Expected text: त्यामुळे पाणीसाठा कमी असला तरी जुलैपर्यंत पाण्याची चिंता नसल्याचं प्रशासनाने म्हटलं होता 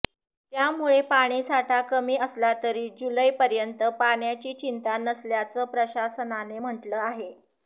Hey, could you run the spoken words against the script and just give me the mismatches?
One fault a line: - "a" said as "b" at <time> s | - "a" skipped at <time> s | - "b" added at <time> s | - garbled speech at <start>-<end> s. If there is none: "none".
- "होता" said as "आहे" at 7.0 s